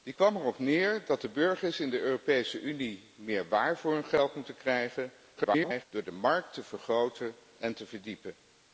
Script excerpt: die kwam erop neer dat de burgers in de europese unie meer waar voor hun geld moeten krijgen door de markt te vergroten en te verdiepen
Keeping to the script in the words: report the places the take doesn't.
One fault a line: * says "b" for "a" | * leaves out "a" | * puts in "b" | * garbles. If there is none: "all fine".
* garbles